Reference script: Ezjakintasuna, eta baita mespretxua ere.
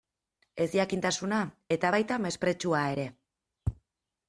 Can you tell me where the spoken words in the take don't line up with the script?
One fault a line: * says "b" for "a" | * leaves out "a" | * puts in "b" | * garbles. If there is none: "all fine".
all fine